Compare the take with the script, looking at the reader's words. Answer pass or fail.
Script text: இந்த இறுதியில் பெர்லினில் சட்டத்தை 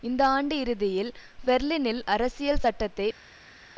fail